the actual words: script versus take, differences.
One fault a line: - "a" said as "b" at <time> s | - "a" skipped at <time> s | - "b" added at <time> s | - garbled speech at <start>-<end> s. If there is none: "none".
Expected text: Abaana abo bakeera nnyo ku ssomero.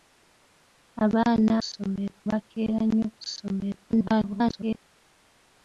- "abo" said as "ssomero" at 1.6 s
- garbled speech at 3.9-4.8 s